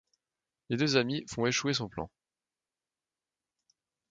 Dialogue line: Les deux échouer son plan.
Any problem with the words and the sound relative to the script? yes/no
yes